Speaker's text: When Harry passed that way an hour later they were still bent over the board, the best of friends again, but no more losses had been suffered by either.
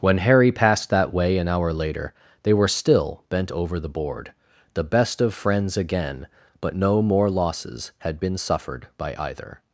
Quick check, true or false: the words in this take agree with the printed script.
true